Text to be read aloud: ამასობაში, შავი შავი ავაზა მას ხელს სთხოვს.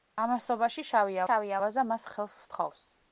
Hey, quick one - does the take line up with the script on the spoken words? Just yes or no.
yes